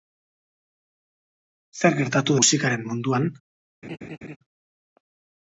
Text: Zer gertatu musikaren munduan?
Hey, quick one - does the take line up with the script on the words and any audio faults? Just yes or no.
no